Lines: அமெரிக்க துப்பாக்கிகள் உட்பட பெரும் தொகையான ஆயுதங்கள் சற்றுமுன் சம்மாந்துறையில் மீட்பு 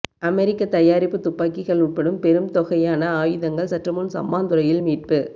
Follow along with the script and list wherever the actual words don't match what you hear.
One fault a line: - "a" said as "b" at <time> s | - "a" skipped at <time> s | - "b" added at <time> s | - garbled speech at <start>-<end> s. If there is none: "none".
- "தயாரிப்பு" added at 0.7 s